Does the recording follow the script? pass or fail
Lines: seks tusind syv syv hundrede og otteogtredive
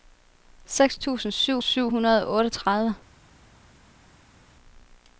pass